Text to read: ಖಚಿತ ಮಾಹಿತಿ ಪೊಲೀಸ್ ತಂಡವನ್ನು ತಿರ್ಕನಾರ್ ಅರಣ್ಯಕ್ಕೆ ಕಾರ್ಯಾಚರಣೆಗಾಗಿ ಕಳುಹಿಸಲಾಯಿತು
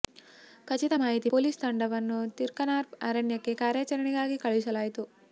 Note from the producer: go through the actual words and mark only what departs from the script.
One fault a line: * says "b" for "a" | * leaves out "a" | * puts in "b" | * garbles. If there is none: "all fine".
all fine